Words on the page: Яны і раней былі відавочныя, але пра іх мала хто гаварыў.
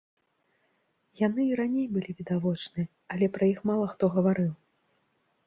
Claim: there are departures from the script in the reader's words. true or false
false